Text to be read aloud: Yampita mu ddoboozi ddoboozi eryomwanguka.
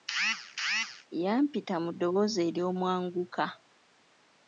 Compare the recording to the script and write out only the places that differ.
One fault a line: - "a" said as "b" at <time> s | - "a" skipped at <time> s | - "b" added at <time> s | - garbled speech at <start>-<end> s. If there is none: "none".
- "ddoboozi" skipped at 2.4 s